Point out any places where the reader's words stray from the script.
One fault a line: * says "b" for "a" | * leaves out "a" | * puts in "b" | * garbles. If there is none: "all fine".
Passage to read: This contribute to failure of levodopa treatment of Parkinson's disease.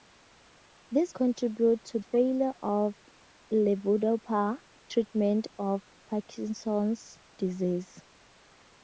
all fine